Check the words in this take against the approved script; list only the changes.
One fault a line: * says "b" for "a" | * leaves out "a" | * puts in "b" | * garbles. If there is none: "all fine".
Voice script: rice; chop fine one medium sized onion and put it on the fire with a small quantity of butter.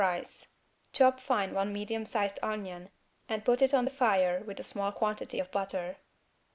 all fine